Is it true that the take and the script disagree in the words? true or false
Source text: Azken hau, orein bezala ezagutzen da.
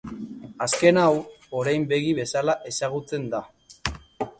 true